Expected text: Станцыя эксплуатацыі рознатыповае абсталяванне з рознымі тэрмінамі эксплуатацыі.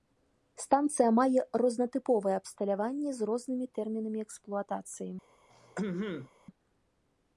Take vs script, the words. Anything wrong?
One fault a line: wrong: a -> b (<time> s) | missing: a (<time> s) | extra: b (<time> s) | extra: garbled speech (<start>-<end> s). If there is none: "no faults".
wrong: эксплуатацыі -> мае (1.2 s)